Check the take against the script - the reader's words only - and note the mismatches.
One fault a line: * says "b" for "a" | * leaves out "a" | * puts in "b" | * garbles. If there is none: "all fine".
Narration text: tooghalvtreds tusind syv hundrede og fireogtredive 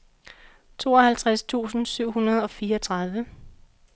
all fine